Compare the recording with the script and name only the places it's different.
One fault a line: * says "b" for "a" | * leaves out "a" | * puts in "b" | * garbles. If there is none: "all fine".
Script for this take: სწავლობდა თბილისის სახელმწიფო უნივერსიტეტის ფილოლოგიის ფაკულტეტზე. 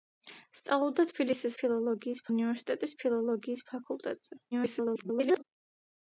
* says "ფილოლოგიის" for "სახელმწიფო"
* garbles